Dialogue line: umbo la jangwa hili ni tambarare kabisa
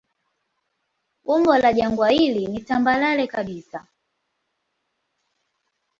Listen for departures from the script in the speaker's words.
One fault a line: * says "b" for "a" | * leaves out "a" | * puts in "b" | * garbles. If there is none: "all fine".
all fine